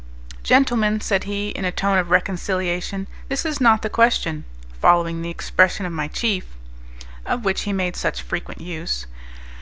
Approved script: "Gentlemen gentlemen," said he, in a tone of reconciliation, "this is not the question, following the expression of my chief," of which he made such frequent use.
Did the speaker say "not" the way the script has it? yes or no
yes